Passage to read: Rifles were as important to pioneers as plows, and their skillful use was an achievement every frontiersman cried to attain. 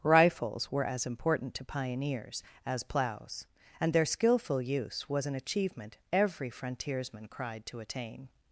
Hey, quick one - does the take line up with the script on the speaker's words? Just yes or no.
yes